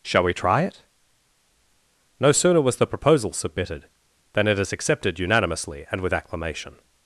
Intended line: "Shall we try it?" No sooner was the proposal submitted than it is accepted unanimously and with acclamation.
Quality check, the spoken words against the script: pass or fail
pass